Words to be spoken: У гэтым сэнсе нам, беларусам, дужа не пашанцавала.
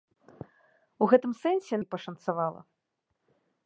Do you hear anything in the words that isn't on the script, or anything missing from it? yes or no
yes